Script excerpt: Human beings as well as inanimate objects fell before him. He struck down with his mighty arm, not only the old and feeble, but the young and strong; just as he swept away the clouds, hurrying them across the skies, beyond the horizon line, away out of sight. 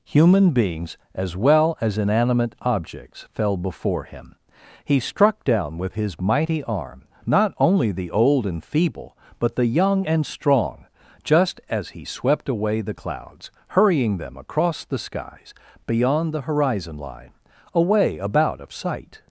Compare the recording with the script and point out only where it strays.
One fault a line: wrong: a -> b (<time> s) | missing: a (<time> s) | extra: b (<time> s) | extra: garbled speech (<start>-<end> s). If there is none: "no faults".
wrong: out -> about (18.2 s)